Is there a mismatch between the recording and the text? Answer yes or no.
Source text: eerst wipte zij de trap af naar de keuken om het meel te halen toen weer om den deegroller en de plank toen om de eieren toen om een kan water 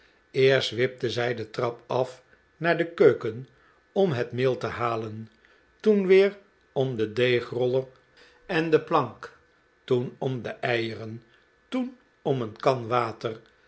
no